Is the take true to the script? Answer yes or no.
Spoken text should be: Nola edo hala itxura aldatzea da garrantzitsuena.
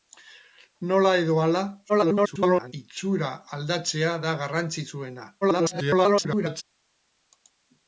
no